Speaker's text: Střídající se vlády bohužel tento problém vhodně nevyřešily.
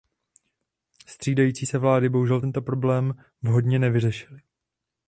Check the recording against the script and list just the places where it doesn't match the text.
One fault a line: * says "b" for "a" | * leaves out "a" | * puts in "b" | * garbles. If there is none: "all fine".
all fine